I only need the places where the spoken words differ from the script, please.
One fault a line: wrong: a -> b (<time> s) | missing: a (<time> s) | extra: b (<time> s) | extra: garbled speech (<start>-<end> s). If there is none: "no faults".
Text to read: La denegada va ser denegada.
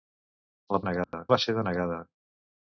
no faults